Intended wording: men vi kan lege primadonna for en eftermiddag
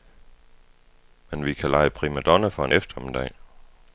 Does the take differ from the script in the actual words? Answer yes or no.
no